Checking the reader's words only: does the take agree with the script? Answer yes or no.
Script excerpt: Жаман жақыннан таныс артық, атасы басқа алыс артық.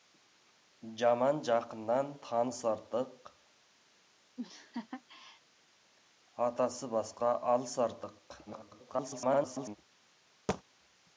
no